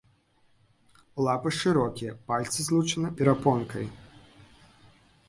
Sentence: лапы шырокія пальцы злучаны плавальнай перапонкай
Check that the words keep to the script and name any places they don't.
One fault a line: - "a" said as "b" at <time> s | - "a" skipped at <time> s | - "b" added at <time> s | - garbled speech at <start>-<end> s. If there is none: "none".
- "плавальнай" skipped at 3.1 s